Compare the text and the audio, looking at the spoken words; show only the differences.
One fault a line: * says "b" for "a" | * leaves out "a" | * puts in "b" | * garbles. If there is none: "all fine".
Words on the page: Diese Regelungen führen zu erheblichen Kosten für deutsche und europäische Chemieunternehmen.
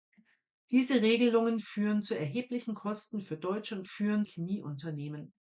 * says "führen" for "europäische"